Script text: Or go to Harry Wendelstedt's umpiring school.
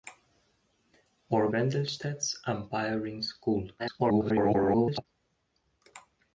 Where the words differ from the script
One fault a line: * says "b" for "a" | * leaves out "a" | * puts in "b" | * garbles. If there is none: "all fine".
* leaves out "go to Harry"
* garbles